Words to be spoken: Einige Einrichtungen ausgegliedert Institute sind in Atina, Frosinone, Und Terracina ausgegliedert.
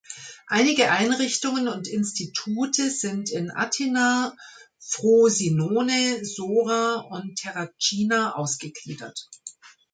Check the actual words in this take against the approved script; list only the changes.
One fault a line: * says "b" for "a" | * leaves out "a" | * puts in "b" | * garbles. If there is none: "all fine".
* says "und" for "ausgegliedert"
* puts in "Sora"